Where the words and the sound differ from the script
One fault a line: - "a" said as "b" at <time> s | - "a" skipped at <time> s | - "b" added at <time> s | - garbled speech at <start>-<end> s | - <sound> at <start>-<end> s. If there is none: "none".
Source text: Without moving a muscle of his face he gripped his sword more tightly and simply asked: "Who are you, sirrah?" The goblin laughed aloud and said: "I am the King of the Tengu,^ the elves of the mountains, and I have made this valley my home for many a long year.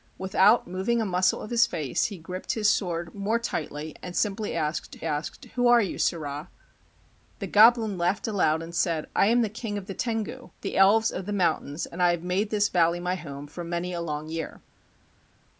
- "asked" added at 5.0 s